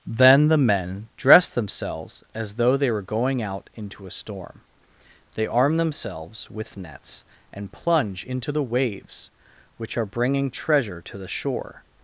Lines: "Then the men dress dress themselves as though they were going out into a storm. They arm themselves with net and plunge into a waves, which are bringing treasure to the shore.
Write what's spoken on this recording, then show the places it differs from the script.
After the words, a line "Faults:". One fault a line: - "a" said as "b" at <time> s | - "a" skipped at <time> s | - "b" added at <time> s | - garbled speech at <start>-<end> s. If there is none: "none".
"Then the men dress themselves as though they were going out into a storm. They arm themselves with nets and plunge into the waves, which are bringing treasure to the shore.
Faults:
- "dress" skipped at 1.5 s
- "net" said as "nets" at 6.8 s
- "a" said as "the" at 8.5 s